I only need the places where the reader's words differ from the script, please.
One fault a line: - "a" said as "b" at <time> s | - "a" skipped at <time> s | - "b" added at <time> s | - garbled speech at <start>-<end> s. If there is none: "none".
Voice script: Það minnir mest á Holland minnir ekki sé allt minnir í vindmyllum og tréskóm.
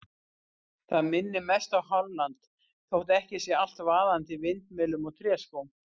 - "minnir" said as "þótt" at 3.0 s
- "minnir" said as "vaðandi" at 3.9 s